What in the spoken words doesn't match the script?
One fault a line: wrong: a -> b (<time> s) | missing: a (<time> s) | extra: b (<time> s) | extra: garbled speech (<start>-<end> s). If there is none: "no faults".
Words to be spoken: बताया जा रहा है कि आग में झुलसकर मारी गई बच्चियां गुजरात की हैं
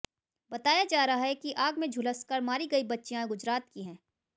no faults